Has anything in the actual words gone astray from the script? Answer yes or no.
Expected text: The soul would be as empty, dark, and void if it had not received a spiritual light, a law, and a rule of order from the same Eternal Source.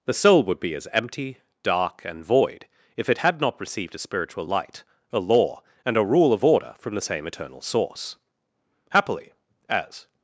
yes